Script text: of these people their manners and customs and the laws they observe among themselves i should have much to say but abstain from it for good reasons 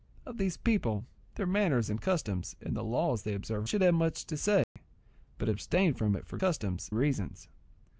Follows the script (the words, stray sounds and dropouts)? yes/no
no